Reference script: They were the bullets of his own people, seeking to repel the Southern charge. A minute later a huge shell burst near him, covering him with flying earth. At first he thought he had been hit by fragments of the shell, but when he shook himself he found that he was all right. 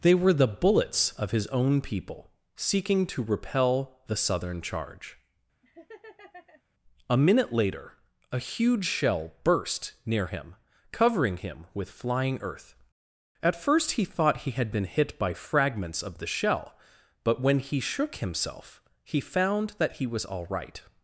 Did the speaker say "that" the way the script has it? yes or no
yes